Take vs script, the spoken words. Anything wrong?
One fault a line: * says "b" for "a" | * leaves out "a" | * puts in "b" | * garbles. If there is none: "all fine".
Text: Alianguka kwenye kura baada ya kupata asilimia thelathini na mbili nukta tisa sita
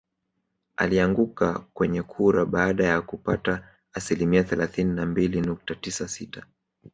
all fine